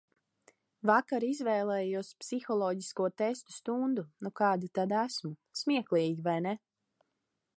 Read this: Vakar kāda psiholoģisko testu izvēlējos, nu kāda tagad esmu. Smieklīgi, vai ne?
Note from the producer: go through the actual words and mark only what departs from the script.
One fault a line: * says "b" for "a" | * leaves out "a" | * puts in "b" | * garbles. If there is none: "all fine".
* says "izvēlējos" for "kāda"
* says "stundu" for "izvēlējos"
* says "tad" for "tagad"